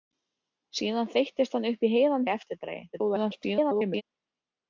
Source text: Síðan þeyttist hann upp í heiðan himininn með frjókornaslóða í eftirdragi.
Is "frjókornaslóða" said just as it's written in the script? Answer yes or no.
no